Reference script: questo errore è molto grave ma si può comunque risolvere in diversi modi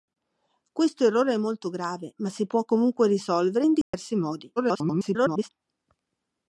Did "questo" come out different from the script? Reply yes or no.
no